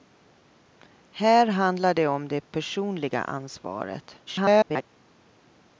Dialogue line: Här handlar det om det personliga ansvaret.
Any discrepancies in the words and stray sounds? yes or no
yes